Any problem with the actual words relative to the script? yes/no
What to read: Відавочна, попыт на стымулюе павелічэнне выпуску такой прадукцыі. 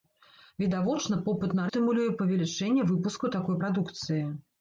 no